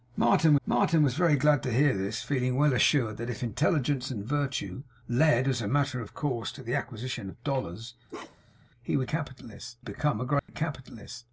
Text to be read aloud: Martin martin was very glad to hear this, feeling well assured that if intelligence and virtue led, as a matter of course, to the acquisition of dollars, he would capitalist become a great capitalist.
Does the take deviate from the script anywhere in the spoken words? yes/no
no